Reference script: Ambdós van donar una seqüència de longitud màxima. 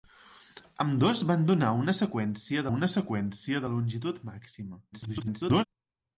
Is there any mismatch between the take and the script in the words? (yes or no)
yes